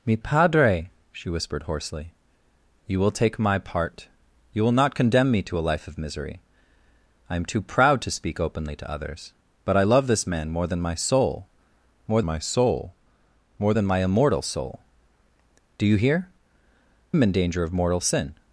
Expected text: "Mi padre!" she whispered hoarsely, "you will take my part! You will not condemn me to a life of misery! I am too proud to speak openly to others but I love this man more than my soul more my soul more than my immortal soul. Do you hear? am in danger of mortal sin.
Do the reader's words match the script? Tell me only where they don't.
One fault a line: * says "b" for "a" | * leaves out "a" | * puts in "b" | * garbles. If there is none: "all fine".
all fine